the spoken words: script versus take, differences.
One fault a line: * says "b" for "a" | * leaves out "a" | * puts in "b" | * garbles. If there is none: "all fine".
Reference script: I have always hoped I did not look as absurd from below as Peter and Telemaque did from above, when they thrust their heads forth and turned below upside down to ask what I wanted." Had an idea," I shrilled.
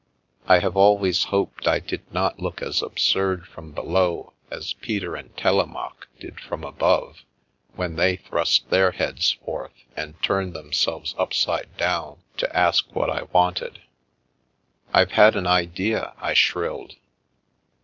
* says "themselves" for "below"
* puts in "I've"